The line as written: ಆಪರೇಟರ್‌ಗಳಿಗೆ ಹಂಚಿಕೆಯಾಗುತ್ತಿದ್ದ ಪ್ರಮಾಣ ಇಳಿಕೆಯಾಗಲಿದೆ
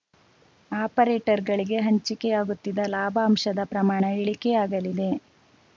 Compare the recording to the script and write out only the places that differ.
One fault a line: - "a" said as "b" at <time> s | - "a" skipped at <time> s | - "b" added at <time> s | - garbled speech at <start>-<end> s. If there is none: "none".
- "ಲಾಭಾಂಶದ" added at 2.9 s